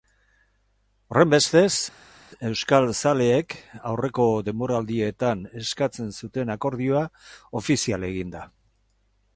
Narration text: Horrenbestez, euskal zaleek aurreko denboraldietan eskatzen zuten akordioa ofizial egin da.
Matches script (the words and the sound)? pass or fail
pass